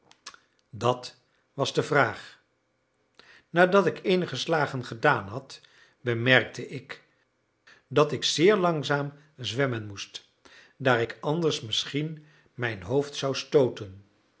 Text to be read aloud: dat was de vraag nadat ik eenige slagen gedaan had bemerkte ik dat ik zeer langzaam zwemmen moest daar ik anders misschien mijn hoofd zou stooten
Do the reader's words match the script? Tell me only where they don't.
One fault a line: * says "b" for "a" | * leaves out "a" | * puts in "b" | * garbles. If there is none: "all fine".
all fine